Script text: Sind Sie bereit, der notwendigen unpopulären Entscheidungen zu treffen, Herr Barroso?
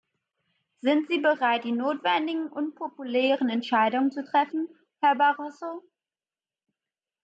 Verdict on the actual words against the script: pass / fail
fail